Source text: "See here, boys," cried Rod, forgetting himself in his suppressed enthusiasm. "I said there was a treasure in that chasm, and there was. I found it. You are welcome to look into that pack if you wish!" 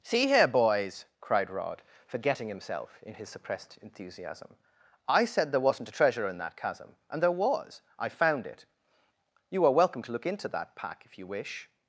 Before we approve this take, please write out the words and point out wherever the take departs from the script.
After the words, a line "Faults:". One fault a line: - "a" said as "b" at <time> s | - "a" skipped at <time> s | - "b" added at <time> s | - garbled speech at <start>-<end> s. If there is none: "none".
"See here, boys," cried Rod, forgetting himself in his suppressed enthusiasm. "I said there wasn't a treasure in that chasm, and there was. I found it. You are welcome to look into that pack if you wish!"
Faults:
- "was" said as "wasn't" at 5.6 s